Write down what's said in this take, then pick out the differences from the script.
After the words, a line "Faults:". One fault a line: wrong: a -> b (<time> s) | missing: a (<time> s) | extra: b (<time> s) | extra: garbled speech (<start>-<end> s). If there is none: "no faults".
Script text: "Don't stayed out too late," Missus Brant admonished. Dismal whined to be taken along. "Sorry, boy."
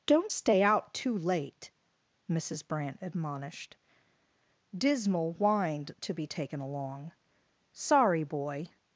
"Don't stay out too late," Missus Brant admonished. Dismal whined to be taken along. "Sorry, boy."
Faults:
wrong: stayed -> stay (0.3 s)